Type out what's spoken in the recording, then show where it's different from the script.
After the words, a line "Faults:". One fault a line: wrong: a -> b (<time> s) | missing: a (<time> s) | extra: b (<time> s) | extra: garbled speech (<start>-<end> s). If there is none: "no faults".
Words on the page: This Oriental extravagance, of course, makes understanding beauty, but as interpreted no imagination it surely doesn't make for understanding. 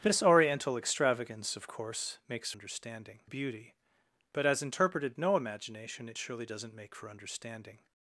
This Oriental extravagance, of course, makes understanding beauty, but as interpreted no imagination it surely doesn't make for understanding.
Faults:
no faults